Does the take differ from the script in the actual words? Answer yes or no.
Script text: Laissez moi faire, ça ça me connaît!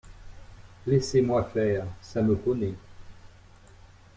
yes